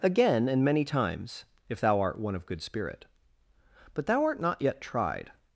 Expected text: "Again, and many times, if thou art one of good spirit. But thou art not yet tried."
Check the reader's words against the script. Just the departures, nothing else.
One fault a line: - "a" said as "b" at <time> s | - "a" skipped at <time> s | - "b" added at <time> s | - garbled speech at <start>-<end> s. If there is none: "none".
none